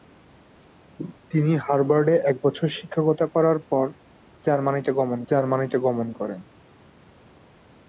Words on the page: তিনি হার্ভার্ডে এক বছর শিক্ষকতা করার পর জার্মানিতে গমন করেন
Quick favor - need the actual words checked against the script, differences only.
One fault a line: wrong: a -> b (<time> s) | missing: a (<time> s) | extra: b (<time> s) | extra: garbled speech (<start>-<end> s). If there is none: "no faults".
extra: জার্মানিতে গমন (5.3 s)